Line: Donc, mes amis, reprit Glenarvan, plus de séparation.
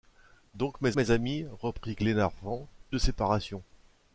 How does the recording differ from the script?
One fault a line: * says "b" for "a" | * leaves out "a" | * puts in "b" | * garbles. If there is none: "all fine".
* puts in "mes"
* leaves out "plus"